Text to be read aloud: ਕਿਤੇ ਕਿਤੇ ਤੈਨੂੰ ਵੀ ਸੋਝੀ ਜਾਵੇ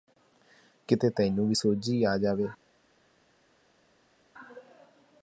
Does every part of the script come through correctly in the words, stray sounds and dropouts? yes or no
no